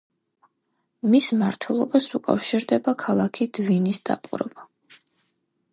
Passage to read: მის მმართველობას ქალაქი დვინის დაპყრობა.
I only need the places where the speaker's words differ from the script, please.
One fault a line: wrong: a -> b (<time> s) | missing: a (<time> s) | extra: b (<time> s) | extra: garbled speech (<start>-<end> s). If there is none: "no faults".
extra: უკავშირდება (2.2 s)